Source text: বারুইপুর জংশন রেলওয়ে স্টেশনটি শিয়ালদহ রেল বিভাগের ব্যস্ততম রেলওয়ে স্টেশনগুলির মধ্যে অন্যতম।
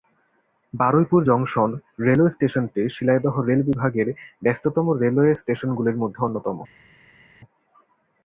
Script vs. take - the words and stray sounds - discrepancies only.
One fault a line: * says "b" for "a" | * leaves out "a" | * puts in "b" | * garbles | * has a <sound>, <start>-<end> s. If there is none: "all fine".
all fine